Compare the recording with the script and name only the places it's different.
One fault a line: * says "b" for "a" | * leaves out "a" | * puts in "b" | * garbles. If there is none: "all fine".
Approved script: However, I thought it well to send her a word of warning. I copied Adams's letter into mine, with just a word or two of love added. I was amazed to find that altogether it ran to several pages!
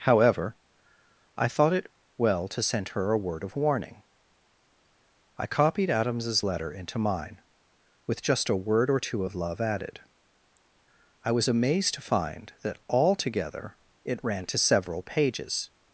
all fine